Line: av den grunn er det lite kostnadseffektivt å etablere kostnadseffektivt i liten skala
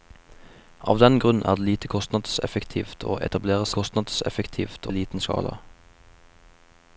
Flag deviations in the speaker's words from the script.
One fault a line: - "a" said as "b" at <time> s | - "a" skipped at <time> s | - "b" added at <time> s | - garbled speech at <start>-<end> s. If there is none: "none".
none